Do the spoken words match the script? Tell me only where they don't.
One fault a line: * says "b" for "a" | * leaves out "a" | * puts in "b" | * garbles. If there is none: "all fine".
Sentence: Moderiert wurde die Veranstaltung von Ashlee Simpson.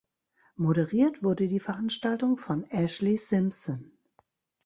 all fine